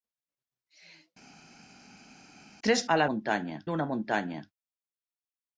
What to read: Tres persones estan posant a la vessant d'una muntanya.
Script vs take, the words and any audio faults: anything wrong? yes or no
yes